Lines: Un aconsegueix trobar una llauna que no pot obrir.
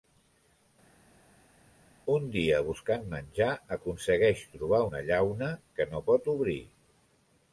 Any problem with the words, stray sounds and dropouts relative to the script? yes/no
yes